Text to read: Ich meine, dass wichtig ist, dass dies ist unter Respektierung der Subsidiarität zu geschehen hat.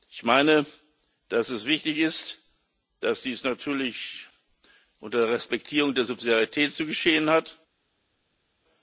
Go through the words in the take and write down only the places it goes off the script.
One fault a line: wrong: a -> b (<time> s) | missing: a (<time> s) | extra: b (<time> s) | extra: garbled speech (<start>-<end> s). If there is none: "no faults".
extra: es (1.5 s)
wrong: ist -> natürlich (3.4 s)